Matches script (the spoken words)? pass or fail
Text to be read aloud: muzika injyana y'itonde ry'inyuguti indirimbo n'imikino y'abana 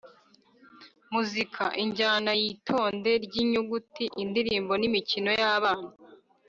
pass